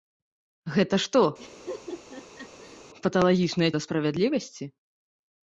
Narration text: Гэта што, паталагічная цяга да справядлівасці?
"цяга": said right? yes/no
no